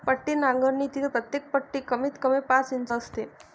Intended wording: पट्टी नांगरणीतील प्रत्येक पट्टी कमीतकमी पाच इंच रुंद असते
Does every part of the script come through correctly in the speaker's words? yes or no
no